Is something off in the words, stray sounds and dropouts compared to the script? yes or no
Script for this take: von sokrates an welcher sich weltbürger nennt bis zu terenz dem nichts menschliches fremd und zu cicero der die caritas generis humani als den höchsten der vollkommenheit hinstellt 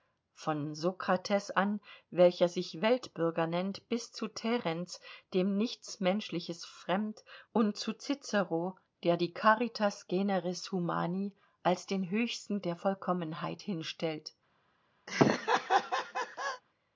yes